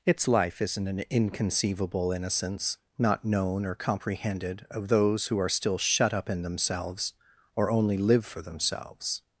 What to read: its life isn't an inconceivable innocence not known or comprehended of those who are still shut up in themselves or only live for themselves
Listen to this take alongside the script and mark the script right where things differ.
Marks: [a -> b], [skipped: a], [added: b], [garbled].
its life isn't an inconceivable innocence not known or comprehended of those who are still shut up in themselves or only live for themselves